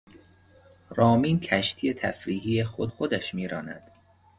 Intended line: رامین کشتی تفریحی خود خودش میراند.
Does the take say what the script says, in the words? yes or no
yes